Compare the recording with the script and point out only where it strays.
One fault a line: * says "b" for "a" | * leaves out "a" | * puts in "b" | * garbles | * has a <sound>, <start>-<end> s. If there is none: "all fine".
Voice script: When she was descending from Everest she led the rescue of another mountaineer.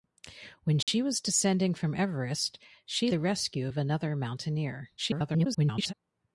* has a dropout, 0.8-0.9 s
* leaves out "led"
* garbles